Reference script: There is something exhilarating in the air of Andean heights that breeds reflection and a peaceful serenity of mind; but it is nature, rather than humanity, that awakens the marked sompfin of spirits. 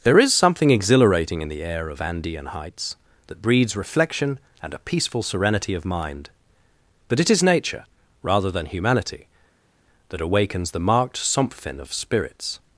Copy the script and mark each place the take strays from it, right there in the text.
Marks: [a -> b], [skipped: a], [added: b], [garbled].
There is something exhilarating in the air of Andean heights that breeds reflection and a peaceful serenity of mind; but it is nature, rather than humanity, that awakens the marked sompfin of spirits.